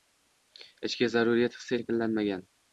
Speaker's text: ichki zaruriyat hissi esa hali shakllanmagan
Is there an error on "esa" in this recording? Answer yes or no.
yes